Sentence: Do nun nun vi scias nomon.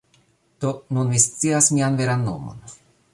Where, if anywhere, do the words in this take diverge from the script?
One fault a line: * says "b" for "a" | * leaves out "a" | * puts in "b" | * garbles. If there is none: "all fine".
* leaves out "nun"
* puts in "mian veran"